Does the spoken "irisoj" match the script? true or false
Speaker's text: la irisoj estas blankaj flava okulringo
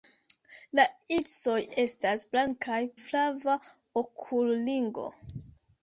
true